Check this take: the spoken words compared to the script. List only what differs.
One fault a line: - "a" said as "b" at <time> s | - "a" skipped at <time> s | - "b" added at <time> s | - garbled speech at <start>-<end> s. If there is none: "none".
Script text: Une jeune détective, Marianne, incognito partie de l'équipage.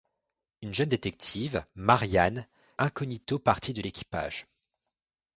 none